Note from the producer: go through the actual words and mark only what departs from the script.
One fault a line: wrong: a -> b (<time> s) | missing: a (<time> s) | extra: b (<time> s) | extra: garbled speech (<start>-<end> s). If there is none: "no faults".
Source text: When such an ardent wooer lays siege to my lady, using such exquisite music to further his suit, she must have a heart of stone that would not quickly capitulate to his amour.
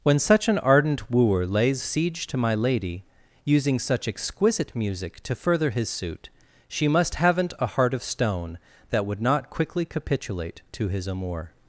wrong: have -> haven't (7.2 s)